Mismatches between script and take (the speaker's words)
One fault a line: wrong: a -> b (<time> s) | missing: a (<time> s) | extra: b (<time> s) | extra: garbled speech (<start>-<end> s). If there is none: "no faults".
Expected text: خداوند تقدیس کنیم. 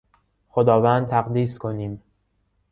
no faults